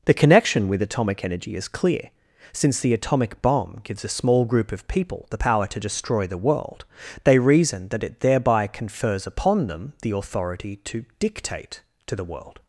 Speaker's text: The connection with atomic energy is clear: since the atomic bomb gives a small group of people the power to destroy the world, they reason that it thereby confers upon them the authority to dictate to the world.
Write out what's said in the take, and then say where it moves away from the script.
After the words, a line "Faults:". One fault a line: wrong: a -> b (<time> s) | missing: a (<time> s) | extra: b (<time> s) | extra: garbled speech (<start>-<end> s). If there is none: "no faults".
The connection with atomic energy is clear: since the atomic bomb gives a small group of people the power to destroy the world, they reason that it thereby confers upon them the authority to dictate to the world.
Faults:
no faults